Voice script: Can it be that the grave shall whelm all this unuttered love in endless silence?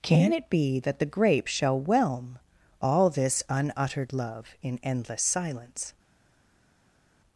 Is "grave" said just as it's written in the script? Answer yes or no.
no